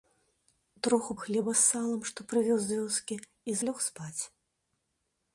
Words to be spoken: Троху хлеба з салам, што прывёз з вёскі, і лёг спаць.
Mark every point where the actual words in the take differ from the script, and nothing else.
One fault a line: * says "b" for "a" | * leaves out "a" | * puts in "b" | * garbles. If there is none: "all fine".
all fine